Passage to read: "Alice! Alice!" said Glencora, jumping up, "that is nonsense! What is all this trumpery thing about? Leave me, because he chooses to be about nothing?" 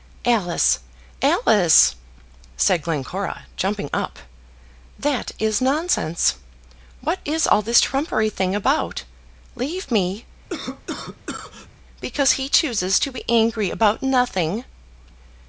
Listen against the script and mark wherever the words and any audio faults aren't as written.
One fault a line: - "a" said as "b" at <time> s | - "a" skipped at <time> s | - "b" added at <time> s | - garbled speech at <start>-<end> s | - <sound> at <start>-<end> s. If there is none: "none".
- cough at 10.5-11.7 s
- "angry" added at 13.3 s